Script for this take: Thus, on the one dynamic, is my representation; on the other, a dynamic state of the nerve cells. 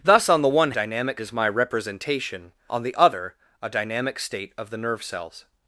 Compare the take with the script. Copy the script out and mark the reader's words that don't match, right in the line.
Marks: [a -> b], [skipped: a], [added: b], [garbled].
Thus, on the one dynamic, is my representation; on the other, a dynamic state of the nerve cells.